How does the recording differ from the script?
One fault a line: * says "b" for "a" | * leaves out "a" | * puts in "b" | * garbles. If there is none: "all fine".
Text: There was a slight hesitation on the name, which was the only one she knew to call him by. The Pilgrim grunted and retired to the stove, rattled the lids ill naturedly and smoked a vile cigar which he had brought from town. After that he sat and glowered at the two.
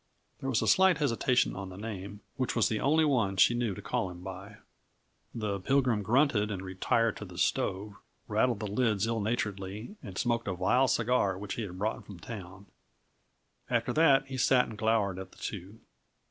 all fine